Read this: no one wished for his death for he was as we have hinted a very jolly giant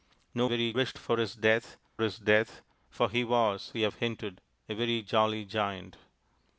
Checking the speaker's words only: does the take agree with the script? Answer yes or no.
no